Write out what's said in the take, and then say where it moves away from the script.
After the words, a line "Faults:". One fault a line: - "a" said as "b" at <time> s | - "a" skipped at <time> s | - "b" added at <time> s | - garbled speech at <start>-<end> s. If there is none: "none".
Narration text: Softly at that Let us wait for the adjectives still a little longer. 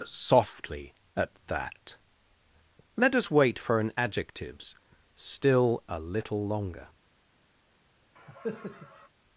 Softly at that Let us wait for an adjectives still a little longer.
Faults:
- "the" said as "an" at 3.8 s